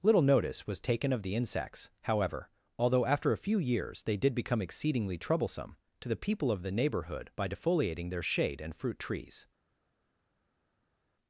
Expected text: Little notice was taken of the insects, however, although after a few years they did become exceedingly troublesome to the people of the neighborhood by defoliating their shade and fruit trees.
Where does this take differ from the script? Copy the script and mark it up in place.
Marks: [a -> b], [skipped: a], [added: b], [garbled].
Little notice was taken of the insects, however, although after a few years they did become exceedingly troublesome to the people of the neighborhood by defoliating their shade and fruit trees.